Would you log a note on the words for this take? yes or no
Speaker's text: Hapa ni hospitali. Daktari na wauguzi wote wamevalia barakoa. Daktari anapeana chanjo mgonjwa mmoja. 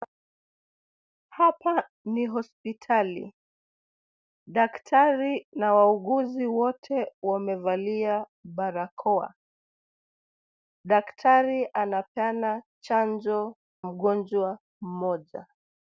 no